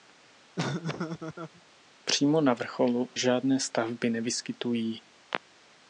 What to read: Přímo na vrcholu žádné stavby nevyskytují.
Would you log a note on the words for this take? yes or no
no